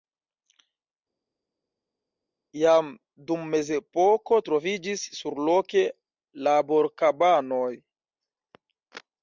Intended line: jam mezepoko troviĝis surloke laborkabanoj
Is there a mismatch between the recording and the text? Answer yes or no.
yes